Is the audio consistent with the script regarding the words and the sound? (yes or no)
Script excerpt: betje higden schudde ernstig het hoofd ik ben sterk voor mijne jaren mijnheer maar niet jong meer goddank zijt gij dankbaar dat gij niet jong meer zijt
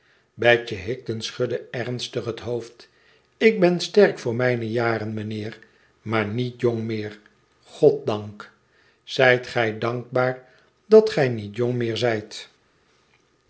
yes